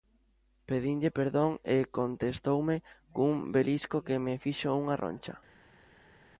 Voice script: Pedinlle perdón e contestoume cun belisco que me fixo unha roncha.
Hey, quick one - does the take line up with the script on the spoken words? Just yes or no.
yes